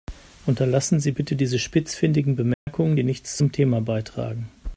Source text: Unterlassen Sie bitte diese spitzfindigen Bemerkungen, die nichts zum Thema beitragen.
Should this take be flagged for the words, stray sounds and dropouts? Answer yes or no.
yes